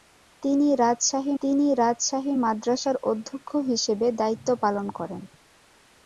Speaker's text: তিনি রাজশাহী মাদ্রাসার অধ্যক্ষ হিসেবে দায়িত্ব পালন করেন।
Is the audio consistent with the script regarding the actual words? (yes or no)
no